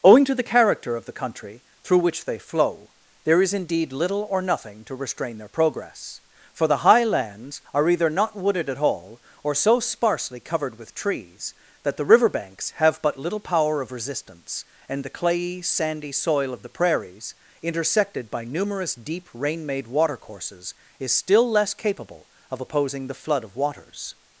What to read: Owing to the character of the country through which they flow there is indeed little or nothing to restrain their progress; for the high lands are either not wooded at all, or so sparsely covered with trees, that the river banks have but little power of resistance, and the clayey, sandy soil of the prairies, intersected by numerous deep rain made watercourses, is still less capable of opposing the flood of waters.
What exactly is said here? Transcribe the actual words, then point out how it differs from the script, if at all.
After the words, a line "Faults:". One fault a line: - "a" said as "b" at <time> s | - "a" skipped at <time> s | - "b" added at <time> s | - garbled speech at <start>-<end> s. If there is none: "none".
Owing to the character of the country through which they flow there is indeed little or nothing to restrain their progress; for the high lands are either not wooded at all, or so sparsely covered with trees, that the river banks have but little power of resistance, and the clayey, sandy soil of the prairies, intersected by numerous deep rain made watercourses, is still less capable of opposing the flood of waters.
Faults:
none